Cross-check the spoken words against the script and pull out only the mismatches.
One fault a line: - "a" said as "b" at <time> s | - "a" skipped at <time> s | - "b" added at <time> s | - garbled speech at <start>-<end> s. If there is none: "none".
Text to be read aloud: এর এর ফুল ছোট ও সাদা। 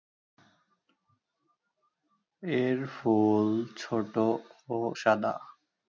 - "এর" skipped at 2.8 s